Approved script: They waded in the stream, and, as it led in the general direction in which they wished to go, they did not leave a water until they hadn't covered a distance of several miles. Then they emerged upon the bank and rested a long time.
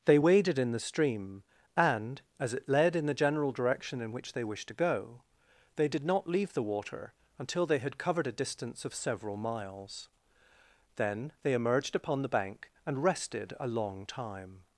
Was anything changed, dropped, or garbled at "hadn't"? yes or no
yes